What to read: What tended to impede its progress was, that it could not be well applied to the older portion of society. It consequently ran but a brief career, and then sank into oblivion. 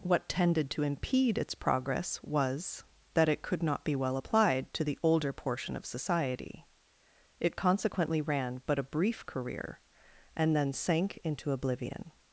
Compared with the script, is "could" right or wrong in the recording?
right